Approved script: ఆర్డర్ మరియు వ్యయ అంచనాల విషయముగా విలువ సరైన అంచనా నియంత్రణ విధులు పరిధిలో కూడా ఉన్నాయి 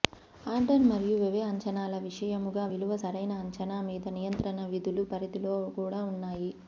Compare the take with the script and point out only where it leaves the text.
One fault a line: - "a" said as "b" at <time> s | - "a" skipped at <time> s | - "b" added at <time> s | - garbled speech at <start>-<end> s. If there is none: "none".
- "మీద" added at 3.9 s